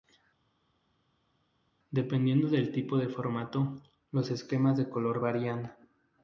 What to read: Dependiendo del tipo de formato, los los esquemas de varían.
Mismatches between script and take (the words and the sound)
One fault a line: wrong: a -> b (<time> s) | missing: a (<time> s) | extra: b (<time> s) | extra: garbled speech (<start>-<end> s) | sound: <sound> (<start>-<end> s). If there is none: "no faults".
missing: los (4.3 s)
extra: color (4.9 s)